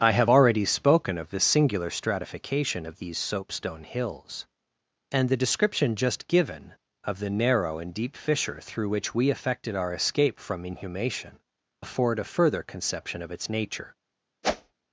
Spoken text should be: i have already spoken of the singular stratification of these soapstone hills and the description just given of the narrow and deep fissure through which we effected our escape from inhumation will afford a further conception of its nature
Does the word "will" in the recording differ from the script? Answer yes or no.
yes